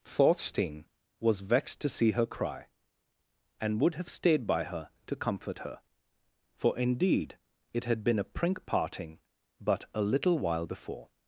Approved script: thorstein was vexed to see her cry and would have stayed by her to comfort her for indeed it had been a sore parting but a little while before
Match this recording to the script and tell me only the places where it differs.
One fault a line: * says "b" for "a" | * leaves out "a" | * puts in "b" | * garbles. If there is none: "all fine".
* says "prink" for "sore"